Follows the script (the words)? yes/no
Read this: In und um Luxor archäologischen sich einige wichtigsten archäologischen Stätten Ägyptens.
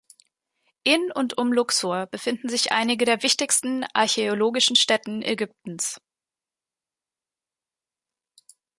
no